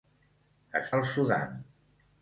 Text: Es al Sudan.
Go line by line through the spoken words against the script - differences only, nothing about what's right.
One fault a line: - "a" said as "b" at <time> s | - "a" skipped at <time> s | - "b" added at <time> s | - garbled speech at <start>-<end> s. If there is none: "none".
none